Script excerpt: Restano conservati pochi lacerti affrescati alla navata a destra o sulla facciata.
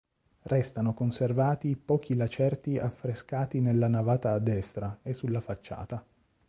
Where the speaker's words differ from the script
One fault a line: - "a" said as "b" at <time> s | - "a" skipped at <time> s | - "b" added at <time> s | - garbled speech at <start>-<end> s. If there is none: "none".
- "alla" said as "nella" at 3.6 s
- "o" said as "e" at 5.0 s